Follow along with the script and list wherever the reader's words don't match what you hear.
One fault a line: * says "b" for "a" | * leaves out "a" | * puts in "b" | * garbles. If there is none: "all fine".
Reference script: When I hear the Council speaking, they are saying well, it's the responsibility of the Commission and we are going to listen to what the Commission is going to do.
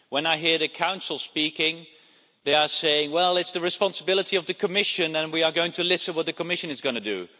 all fine